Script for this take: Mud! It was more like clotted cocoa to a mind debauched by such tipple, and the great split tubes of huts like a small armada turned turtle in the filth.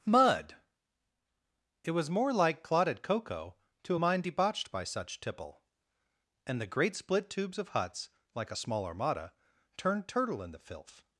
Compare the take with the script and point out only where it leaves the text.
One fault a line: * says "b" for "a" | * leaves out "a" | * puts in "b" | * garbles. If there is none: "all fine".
all fine